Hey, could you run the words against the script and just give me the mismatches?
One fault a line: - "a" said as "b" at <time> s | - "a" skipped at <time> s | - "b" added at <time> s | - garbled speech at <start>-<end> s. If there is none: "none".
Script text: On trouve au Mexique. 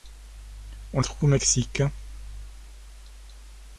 none